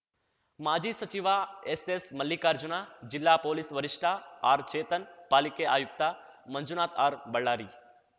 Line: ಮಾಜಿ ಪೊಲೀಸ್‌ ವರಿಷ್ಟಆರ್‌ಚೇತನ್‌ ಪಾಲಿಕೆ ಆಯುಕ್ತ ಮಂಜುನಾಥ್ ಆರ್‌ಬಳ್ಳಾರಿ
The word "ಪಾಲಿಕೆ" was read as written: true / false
true